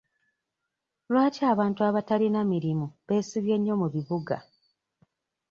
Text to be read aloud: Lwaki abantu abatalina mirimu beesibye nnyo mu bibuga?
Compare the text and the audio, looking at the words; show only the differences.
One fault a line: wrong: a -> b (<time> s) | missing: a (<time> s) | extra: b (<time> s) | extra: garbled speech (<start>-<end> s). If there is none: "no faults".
no faults